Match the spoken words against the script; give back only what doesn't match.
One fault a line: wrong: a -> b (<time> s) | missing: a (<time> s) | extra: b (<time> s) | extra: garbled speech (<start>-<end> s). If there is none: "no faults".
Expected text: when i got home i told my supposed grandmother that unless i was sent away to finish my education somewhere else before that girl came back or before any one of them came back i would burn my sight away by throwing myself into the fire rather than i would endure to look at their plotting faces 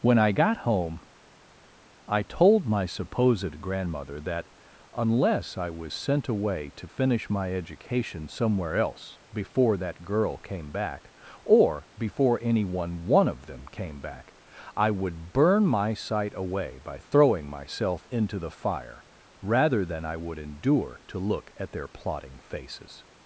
extra: one (13.0 s)